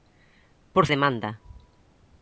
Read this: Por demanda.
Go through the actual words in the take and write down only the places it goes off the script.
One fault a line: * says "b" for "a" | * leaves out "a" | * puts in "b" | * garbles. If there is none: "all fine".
all fine